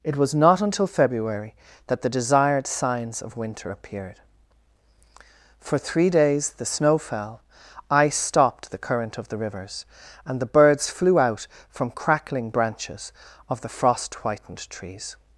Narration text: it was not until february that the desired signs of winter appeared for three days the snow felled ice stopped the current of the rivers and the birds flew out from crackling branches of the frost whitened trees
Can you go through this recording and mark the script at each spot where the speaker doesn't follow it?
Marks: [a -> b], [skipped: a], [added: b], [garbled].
it was not until february that the desired signs of winter appeared for three days the snow [felled -> fell] ice stopped the current of the rivers and the birds flew out from crackling branches of the frost whitened trees